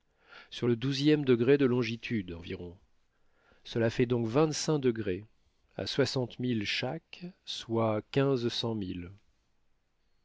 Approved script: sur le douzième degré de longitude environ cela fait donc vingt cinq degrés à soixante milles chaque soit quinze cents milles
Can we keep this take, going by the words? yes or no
yes